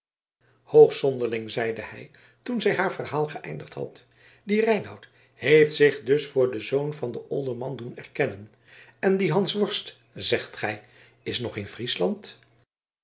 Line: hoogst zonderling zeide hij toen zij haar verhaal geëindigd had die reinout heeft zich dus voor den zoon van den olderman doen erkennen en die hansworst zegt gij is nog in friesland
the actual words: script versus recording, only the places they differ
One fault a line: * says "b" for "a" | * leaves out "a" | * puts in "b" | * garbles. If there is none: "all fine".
all fine